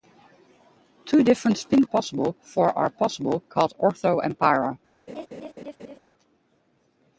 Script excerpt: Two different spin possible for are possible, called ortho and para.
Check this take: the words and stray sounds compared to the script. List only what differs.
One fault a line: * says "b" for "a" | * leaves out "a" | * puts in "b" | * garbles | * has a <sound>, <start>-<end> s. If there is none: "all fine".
* has a laugh, 5.1-6.0 s